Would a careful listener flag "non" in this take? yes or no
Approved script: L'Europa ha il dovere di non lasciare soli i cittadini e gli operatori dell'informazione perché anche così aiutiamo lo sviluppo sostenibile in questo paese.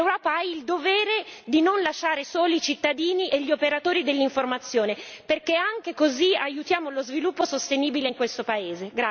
no